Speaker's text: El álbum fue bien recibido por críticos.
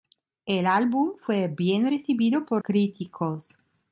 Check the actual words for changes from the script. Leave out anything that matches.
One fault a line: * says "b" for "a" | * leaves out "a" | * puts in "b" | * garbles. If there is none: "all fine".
all fine